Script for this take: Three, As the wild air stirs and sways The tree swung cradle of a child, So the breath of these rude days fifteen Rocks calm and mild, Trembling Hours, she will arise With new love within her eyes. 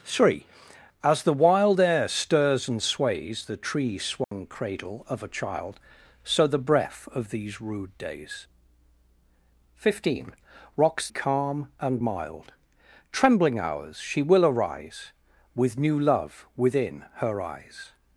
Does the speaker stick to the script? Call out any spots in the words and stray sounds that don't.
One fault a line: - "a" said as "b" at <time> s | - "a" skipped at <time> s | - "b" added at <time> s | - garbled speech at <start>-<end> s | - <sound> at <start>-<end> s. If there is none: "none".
- dropout at 4.2-4.3 s